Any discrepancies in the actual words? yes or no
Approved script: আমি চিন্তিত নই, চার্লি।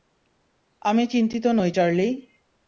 no